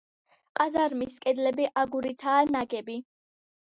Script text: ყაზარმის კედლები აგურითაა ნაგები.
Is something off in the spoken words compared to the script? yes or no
no